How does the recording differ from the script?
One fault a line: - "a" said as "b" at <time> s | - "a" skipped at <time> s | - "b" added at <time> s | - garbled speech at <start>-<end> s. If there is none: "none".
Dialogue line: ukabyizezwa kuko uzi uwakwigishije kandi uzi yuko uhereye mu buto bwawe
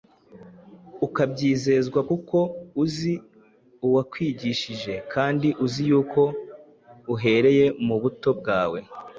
none